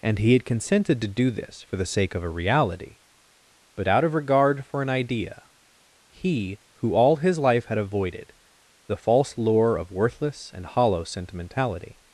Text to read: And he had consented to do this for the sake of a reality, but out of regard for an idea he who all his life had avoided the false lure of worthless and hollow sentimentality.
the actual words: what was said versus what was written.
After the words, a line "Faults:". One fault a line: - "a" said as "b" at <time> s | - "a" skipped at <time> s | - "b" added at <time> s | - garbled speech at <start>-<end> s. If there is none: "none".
And he had consented to do this for the sake of a reality, but out of regard for an idea he who all his life had avoided the false lure of worthless and hollow sentimentality.
Faults:
none